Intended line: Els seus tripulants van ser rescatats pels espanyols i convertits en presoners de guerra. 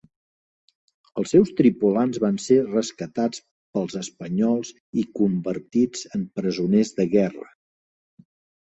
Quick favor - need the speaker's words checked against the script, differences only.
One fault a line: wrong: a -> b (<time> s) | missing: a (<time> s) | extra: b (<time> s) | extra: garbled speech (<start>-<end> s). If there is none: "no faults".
no faults